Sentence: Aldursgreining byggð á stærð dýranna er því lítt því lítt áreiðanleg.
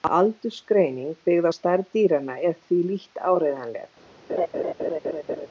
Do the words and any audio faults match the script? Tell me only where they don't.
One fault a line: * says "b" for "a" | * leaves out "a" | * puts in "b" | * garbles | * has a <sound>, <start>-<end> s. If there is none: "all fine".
* leaves out "því lítt"
* has a laugh, 4.3-5.5 s